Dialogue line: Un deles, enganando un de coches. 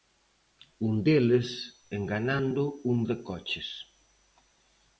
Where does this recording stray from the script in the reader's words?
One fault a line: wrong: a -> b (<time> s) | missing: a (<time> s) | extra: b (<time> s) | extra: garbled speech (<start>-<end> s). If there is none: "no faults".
no faults